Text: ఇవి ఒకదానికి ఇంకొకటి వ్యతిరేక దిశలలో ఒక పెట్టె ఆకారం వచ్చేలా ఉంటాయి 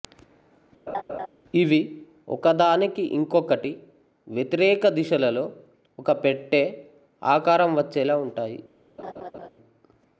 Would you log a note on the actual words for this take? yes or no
no